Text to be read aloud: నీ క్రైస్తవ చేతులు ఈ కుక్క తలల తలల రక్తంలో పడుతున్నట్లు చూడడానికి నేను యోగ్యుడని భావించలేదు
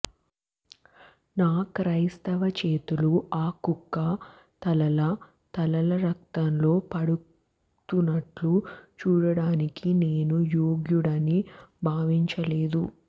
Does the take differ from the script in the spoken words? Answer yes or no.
yes